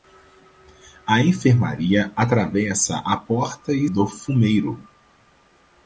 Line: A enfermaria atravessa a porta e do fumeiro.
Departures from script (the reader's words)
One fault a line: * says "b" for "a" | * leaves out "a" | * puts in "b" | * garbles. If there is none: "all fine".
all fine